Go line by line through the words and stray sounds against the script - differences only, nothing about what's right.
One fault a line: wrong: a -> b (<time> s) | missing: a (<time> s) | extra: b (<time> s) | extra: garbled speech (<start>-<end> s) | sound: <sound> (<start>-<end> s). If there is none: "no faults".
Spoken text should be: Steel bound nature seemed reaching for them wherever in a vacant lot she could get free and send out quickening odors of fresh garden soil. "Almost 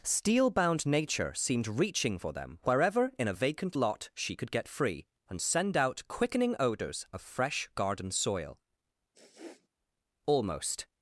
sound: sniff (9.1-9.7 s)